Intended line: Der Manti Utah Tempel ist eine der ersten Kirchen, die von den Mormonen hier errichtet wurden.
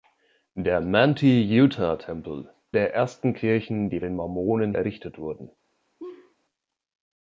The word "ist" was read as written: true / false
false